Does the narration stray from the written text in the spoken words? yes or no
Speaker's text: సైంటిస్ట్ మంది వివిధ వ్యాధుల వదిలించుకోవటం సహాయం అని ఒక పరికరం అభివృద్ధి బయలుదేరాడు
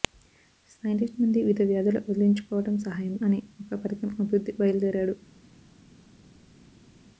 no